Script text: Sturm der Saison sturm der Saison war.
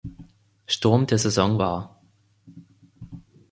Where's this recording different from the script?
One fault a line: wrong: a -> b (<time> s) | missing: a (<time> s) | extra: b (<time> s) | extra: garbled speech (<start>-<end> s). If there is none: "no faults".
missing: sturm der Saison (1.6 s)